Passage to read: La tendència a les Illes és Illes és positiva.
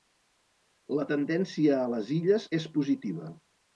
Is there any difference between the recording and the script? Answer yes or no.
yes